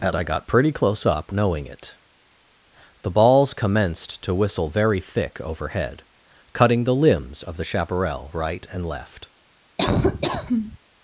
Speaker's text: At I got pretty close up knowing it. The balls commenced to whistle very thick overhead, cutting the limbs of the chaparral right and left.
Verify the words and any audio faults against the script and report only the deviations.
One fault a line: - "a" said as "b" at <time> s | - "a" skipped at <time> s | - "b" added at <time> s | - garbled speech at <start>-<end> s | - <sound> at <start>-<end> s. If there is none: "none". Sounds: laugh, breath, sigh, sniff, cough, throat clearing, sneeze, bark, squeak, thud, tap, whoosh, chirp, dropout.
- laugh at 9.8-10.8 s